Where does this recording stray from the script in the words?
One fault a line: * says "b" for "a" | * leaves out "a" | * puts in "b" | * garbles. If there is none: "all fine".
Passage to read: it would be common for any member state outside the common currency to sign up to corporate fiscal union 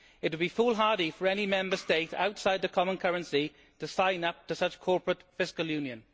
* says "foolhardy" for "common"
* puts in "such"